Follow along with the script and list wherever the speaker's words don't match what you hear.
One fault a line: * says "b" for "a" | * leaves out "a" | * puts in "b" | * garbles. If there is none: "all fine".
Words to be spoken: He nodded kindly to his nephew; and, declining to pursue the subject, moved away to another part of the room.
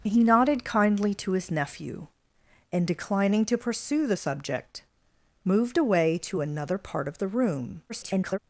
* garbles